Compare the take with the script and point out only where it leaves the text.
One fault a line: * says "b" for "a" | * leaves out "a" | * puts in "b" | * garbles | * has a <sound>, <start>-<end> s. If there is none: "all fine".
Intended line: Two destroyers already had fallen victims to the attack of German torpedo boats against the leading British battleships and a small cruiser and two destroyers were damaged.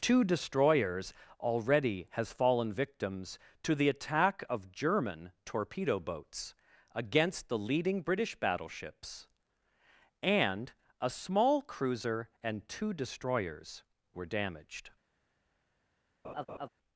* says "has" for "had"
* has a laugh, 16.2-16.7 s